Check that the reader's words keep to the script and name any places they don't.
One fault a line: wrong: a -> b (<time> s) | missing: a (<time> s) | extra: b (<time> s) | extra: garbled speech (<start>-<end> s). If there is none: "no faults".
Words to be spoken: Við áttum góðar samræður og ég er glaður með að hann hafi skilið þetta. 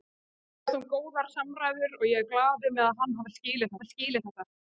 extra: hafi skilið (3.8 s)